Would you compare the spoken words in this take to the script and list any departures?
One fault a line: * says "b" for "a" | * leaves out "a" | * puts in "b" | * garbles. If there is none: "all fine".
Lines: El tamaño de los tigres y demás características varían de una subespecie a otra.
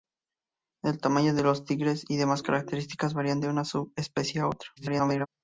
* garbles